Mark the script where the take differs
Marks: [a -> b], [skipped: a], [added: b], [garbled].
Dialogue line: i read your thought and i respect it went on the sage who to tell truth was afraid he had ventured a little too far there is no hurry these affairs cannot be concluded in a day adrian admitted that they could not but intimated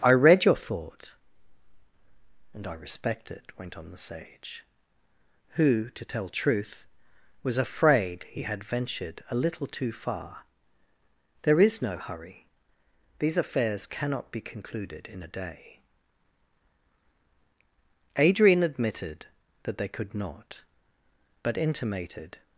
i read your thought and i respect it went on the sage who to tell truth was afraid he had ventured a little too far there is no hurry these affairs cannot be concluded in a day adrian admitted that they could not but intimated